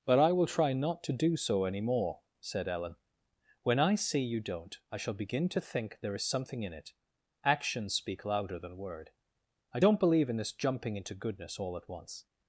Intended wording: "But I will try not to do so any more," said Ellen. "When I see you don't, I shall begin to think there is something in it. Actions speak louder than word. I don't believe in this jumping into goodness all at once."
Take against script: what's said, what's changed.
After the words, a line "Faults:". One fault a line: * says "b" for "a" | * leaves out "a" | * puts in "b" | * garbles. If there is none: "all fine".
"But I will try not to do so any more," said Ellen. "When I see you don't, I shall begin to think there is something in it. Actions speak louder than word. I don't believe in this jumping into goodness all at once."
Faults:
all fine